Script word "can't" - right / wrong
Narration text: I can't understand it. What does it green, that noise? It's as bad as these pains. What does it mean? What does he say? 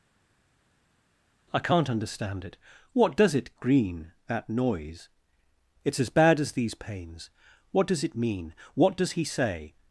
right